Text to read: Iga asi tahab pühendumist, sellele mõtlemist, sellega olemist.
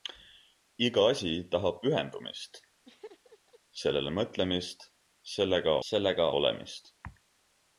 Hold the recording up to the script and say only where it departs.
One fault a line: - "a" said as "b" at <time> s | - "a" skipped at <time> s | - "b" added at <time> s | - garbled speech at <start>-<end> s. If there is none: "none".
- "sellega" added at 5.9 s